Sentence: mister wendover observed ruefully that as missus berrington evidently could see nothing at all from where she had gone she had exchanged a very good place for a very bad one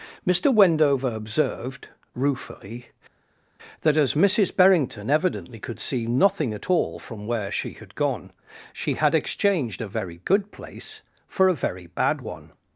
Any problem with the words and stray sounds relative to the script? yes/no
no